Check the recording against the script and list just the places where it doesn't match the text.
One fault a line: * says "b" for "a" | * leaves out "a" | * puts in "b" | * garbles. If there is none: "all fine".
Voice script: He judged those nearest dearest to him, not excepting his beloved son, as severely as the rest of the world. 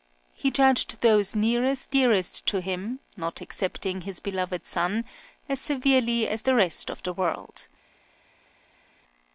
all fine